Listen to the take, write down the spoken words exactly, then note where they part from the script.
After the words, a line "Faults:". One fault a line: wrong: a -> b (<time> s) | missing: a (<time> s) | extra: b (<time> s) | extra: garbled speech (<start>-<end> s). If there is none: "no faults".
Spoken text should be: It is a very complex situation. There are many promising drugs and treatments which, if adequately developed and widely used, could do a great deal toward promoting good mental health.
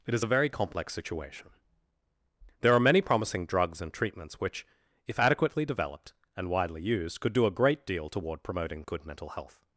It is a very complex situation. There are many promising drugs and treatments which, if adequately developed and widely used, could do a great deal toward promoting good mental health.
Faults:
no faults